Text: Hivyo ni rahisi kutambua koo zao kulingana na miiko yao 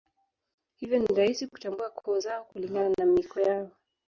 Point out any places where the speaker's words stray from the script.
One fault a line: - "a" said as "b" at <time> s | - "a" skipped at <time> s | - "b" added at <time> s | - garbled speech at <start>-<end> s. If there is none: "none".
none